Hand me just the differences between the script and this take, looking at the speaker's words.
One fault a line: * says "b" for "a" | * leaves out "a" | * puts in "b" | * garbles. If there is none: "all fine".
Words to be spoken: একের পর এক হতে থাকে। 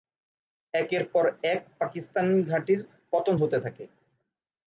* puts in "পাকিস্তানি ঘাঁটির পতন"